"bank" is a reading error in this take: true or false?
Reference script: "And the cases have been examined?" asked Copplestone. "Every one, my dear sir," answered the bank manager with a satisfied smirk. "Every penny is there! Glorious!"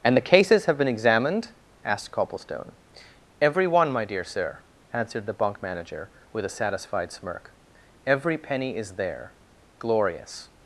true